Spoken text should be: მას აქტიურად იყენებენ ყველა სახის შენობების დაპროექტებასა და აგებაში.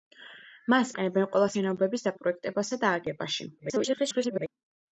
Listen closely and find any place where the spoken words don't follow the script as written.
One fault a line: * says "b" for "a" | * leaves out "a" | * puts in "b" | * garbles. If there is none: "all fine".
* leaves out "აქტიურად"
* leaves out "სახის"
* garbles